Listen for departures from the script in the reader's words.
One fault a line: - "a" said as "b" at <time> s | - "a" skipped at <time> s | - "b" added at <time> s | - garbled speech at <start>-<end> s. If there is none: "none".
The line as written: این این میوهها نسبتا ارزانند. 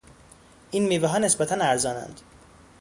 - "این" skipped at 0.9 s